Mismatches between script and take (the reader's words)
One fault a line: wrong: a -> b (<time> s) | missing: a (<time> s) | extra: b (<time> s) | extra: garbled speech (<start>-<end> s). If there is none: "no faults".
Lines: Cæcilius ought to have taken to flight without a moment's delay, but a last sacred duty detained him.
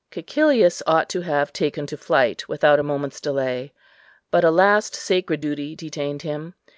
no faults